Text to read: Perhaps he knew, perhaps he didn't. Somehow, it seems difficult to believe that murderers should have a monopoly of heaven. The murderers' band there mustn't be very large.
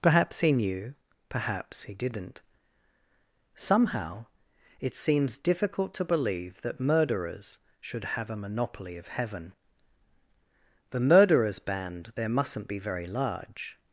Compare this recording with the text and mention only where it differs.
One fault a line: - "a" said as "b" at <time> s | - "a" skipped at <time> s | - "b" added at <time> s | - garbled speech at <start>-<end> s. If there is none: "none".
none